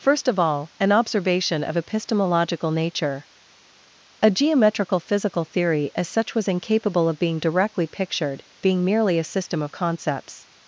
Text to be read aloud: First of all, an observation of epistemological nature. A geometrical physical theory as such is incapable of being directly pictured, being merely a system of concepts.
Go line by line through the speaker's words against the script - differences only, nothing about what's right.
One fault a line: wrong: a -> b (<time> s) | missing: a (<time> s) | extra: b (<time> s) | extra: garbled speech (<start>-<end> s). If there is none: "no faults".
wrong: is -> was (6.3 s)